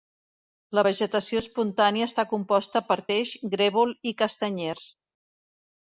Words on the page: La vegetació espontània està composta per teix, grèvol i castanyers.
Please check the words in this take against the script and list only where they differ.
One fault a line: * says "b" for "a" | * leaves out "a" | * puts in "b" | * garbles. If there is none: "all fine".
all fine